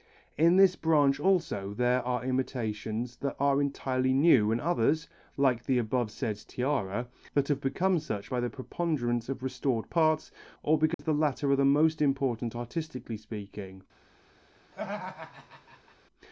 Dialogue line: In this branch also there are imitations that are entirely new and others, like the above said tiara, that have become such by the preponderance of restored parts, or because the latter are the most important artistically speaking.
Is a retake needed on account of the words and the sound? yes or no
yes